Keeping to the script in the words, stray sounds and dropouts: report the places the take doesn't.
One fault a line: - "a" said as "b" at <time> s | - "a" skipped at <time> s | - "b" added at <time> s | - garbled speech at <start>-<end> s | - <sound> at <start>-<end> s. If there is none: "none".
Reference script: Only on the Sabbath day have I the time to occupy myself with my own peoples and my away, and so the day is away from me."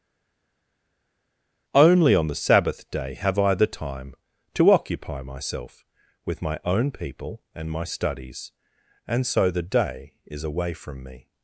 - "peoples" said as "people" at 6.9 s
- "away" said as "studies" at 7.8 s